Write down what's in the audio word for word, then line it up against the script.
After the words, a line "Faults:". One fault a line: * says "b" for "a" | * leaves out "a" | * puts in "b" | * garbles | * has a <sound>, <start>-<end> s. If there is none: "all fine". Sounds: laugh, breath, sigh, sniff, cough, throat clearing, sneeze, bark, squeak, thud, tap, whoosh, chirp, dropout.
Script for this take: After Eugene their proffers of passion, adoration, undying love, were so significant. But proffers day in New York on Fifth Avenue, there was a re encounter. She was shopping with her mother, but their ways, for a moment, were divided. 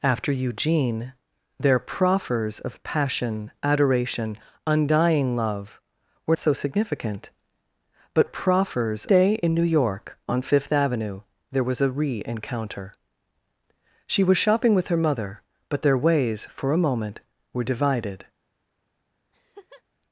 After Eugene their proffers of passion, adoration, undying love, were so significant. But proffers day in New York on Fifth Avenue, there was a re encounter. She was shopping with her mother, but their ways, for a moment, were divided.
Faults:
* has a laugh, 19.3-19.8 s